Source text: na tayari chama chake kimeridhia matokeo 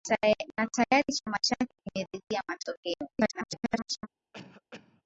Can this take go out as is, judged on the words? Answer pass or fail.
fail